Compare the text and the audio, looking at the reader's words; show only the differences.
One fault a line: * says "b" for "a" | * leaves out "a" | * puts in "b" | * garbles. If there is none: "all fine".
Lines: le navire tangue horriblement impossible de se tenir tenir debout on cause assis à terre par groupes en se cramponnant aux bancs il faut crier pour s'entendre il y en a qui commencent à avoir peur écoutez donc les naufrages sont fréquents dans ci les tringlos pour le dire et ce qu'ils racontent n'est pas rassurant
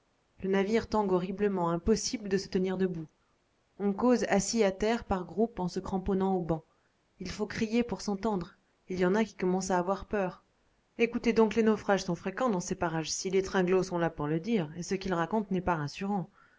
* leaves out "tenir"
* puts in "ces parages"
* puts in "sont là"